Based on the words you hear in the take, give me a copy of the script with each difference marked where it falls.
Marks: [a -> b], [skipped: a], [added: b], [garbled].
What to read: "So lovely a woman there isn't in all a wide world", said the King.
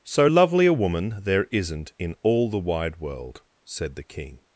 "So lovely a woman there isn't in all [a -> the] wide world", said the King.